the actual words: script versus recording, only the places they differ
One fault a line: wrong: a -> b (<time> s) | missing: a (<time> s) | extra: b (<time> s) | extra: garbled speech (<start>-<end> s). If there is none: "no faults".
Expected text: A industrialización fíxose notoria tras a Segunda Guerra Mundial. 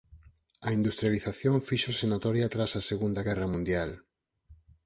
no faults